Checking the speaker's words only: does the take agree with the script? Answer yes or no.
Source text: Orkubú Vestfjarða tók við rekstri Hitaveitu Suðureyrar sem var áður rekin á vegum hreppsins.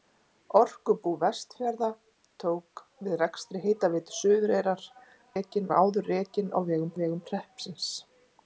no